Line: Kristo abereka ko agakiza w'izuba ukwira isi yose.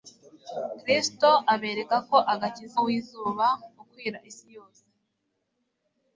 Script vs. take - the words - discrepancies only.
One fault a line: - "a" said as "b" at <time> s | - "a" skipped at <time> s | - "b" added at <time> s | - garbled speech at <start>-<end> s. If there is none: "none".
none